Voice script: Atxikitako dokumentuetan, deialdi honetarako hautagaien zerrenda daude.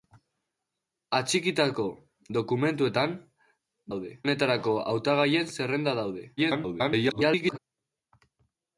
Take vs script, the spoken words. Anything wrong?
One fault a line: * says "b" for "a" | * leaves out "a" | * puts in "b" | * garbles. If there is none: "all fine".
* says "daude" for "deialdi"
* garbles